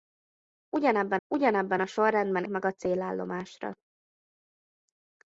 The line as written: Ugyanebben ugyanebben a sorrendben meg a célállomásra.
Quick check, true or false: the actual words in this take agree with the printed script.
true